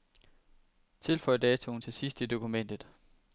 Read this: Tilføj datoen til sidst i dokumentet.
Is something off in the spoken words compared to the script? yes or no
no